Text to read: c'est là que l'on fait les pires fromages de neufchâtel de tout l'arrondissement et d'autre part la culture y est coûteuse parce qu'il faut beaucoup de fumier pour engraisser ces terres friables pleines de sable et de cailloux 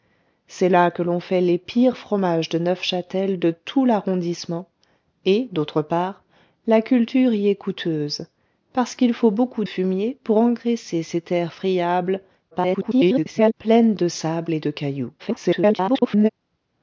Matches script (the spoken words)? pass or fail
fail